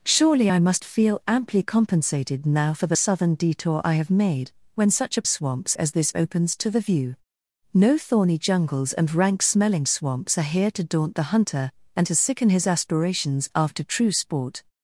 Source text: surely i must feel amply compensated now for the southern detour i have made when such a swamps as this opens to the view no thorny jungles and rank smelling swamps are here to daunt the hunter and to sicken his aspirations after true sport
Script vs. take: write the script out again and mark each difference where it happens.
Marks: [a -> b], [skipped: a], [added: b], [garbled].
surely i must feel amply compensated now for the southern detour i have made when such a swamps as this opens to the view no thorny jungles and rank smelling swamps are here to daunt the hunter and to sicken his aspirations after true sport